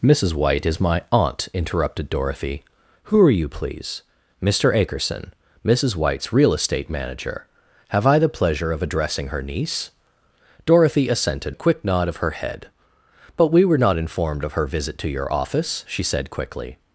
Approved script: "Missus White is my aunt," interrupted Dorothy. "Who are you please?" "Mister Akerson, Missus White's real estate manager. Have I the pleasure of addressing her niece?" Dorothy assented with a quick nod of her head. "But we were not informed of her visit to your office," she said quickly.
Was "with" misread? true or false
true